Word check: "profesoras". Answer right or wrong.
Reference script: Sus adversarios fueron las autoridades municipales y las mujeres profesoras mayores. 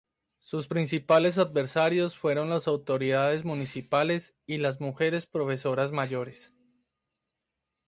right